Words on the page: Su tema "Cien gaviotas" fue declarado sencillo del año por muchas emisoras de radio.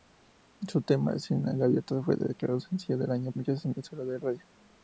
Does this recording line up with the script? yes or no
no